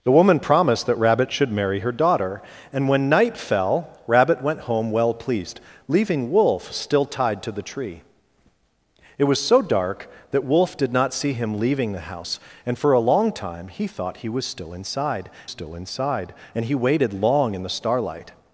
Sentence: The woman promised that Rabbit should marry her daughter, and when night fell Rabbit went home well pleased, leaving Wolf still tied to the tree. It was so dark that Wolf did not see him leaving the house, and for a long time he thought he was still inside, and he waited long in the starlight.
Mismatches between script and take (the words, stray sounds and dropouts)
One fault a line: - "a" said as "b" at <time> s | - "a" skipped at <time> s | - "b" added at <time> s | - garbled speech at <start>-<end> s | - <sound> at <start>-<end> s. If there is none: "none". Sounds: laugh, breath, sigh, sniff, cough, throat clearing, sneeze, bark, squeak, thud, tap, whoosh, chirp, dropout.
- "still inside" added at 15.5 s